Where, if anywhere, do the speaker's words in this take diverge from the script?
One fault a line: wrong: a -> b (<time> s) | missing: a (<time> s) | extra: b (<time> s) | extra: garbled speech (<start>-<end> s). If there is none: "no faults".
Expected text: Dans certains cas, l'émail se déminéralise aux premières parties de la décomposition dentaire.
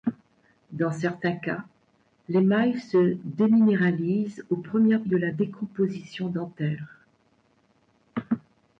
missing: parties (5.0 s)